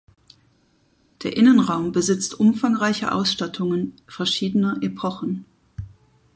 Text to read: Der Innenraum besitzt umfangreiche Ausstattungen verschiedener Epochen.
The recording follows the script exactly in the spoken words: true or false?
true